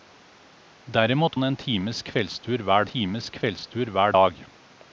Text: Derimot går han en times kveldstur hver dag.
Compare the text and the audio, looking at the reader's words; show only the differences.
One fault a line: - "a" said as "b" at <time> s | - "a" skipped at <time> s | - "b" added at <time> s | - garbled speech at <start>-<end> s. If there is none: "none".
- "går" skipped at 1.4 s
- "times kveldstur hver" added at 2.8 s